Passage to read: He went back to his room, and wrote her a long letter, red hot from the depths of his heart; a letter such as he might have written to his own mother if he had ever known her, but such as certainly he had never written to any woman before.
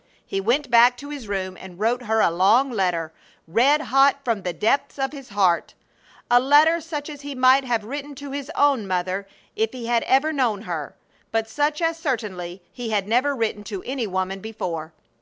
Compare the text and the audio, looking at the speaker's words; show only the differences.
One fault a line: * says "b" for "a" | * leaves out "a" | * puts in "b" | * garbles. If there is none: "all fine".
all fine